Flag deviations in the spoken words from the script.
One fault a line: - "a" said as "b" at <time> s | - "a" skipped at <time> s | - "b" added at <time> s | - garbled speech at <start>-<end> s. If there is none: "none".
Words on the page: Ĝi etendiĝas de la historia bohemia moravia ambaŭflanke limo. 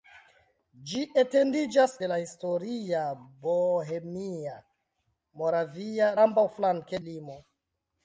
none